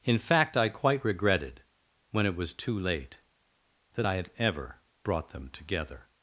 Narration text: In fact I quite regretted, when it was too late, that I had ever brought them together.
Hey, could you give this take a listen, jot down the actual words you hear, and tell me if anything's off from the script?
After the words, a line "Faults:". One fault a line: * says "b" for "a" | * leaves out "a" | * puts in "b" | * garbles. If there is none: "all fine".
In fact I quite regretted, when it was too late, that I had ever brought them together.
Faults:
all fine